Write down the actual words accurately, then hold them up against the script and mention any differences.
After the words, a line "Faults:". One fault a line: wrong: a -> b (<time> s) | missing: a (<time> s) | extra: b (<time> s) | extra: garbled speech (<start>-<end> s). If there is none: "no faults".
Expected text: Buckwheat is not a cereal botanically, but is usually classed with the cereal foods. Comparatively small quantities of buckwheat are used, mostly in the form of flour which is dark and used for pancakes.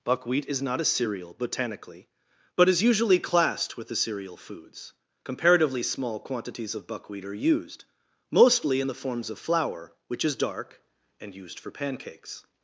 Buckwheat is not a cereal botanically, but is usually classed with the cereal foods. Comparatively small quantities of buckwheat are used, mostly in the forms of flour which is dark and used for pancakes.
Faults:
wrong: form -> forms (8.9 s)